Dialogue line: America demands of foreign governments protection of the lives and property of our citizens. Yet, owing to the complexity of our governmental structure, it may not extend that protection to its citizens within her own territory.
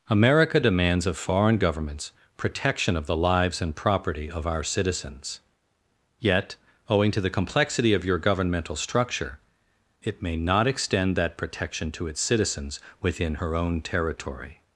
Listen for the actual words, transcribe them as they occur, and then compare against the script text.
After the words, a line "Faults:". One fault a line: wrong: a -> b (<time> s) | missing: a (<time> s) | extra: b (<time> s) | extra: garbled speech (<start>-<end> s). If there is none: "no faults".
America demands of foreign governments protection of the lives and property of our citizens. Yet, owing to the complexity of your governmental structure, it may not extend that protection to its citizens within her own territory.
Faults:
wrong: our -> your (8.0 s)